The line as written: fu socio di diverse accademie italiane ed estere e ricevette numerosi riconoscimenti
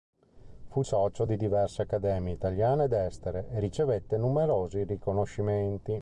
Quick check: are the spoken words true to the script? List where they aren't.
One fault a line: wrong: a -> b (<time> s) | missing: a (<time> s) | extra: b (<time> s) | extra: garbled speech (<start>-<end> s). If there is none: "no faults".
no faults